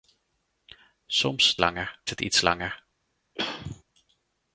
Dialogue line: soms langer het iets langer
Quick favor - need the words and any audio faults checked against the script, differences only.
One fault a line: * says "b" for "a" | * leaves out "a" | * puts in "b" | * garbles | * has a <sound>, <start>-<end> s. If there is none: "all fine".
* has a throat clearing, 3.4-3.8 s